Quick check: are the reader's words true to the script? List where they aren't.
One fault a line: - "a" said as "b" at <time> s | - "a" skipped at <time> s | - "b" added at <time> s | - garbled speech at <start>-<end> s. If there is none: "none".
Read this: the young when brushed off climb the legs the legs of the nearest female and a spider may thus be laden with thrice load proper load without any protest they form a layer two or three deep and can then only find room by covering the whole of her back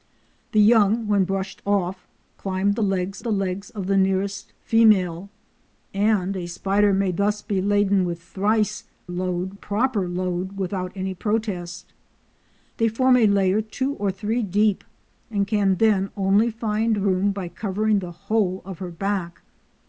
none